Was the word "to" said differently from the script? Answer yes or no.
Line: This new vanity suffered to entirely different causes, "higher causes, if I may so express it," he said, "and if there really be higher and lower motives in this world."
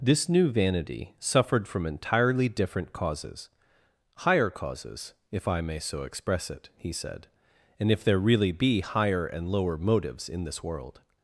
yes